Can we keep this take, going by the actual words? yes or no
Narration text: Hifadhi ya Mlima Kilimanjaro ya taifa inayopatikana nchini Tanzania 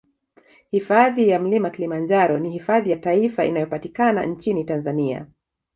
no